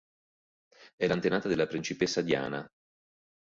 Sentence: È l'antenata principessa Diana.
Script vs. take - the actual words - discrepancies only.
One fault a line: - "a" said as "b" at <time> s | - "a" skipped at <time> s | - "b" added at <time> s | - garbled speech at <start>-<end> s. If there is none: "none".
- "della" added at 1.5 s